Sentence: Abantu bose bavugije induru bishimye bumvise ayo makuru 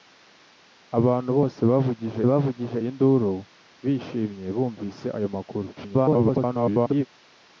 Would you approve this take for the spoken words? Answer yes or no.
no